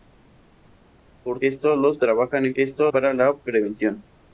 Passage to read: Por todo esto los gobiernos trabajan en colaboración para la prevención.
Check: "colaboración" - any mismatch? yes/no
yes